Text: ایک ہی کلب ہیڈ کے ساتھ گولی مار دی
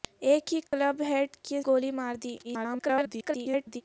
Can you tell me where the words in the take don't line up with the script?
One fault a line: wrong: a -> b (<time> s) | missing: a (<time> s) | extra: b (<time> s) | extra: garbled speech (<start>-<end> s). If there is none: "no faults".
missing: ساتھ (1.6 s)
extra: garbled speech (2.4-3.8 s)